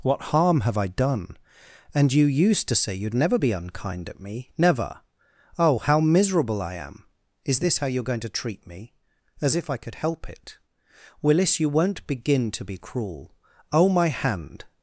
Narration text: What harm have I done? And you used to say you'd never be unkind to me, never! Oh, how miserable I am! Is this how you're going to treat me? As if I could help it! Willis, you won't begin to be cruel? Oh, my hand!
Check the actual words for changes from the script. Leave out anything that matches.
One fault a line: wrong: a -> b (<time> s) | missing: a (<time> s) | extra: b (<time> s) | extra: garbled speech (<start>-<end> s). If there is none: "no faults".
wrong: to -> at (4.1 s)